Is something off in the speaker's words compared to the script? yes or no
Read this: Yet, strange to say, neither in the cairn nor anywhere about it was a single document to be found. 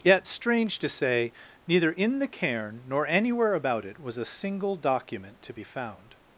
no